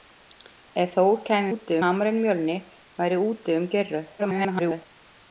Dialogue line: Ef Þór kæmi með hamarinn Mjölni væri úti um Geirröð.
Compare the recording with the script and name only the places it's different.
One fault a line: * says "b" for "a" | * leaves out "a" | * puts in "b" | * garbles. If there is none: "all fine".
* says "úti" for "með"
* garbles